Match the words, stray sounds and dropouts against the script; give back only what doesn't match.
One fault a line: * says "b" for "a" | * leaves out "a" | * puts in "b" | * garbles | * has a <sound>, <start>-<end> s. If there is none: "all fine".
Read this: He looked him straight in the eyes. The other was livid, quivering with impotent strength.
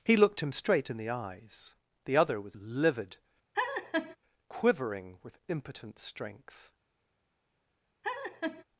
* has a laugh, 3.5-4.2 s
* has a laugh, 8.0-8.6 s